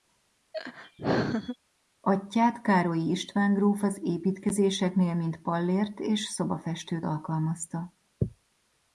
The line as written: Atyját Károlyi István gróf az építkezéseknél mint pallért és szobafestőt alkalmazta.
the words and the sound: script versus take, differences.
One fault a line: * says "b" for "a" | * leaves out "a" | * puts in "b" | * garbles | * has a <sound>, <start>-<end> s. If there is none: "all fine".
* has a laugh, 0.5-1.6 s